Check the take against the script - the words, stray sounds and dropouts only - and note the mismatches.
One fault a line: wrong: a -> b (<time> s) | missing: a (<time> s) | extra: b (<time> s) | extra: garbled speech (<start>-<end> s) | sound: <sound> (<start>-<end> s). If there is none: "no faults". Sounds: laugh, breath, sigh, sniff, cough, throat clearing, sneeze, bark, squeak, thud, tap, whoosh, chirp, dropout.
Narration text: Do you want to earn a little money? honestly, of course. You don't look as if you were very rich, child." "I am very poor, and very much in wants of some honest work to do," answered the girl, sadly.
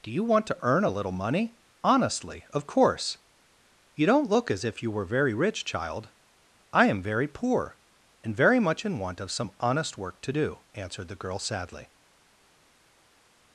wrong: wants -> want (9.0 s)